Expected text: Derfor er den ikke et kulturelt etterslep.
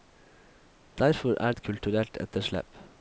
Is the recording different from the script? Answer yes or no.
yes